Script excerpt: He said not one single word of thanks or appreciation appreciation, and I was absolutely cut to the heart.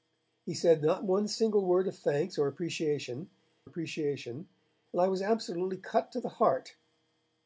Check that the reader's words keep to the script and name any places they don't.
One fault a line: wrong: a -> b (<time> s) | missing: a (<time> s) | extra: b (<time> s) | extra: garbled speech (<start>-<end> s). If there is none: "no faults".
no faults